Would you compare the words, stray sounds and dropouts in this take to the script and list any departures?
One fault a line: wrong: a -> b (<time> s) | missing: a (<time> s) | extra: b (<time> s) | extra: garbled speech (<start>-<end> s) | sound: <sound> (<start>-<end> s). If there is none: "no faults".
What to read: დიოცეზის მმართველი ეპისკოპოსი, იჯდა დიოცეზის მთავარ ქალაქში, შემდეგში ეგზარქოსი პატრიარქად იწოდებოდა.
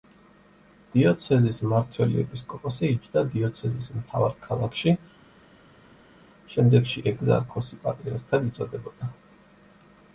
no faults